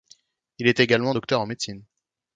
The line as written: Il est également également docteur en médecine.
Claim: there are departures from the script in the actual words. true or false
true